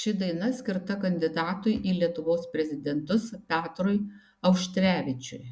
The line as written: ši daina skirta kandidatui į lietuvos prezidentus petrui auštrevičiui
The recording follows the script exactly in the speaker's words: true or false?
true